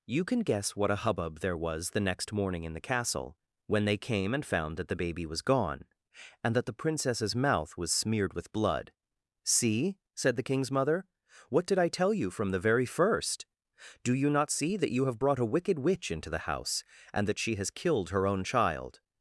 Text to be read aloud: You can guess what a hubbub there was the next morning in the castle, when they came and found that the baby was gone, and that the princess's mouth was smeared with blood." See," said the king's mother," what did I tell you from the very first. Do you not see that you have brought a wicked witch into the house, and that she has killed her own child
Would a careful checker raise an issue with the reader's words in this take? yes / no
no